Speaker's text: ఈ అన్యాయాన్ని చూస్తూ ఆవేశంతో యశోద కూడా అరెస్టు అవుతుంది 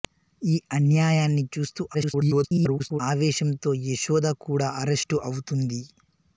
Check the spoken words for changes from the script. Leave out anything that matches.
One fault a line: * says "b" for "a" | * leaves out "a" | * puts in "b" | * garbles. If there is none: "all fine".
* garbles